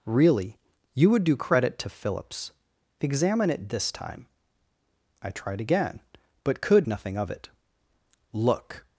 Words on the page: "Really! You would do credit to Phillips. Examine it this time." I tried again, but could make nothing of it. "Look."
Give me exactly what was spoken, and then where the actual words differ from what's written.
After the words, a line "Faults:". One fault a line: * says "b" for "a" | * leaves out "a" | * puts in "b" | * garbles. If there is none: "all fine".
"Really! You would do credit to Phillips. Examine it this time." I tried again, but could nothing of it. "Look."
Faults:
* leaves out "make"